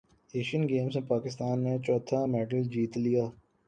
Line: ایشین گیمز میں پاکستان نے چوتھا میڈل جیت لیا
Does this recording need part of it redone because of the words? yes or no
no